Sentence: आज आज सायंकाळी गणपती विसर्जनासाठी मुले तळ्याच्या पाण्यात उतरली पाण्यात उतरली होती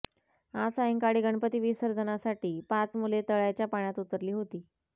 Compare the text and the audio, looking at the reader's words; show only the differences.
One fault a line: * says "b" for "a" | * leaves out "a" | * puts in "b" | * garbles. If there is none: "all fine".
* leaves out "आज"
* puts in "पाच"
* leaves out "पाण्यात उतरली"